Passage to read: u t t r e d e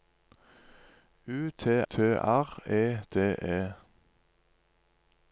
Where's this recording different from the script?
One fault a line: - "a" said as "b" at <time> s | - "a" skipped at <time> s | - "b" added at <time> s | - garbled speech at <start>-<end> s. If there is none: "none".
none